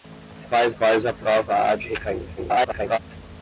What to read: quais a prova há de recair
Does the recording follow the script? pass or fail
fail